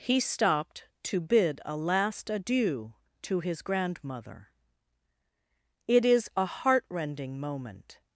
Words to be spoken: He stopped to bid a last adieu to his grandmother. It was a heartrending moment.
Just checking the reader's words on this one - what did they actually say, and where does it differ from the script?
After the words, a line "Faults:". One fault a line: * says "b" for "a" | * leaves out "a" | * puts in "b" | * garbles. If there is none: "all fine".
He stopped to bid a last adieu to his grandmother. It is a heartrending moment.
Faults:
* says "is" for "was"